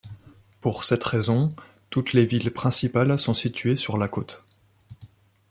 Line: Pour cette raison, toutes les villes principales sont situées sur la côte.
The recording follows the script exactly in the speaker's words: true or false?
true